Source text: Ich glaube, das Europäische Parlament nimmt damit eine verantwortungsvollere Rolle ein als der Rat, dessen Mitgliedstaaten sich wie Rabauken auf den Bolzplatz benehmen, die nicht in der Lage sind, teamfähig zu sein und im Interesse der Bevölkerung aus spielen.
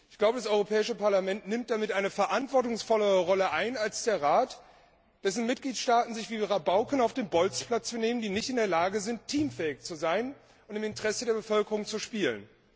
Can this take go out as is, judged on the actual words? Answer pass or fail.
fail